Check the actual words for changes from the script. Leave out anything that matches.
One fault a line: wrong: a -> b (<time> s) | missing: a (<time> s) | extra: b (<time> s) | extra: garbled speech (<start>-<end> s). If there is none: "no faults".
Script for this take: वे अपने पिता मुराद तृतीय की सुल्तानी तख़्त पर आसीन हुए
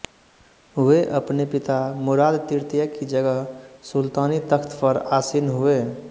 extra: जगह (3.0 s)